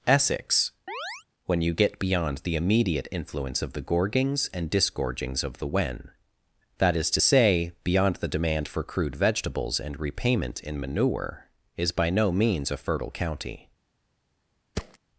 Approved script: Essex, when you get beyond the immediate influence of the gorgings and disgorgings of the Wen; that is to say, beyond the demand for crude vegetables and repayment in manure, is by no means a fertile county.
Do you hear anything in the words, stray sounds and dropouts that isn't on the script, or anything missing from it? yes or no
yes